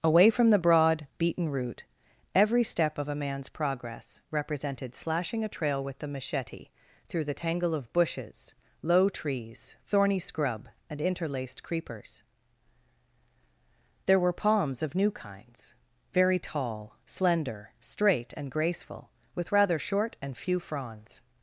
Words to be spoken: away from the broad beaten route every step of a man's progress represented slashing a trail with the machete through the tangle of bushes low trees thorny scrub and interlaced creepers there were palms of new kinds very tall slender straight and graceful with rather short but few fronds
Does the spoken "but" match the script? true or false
false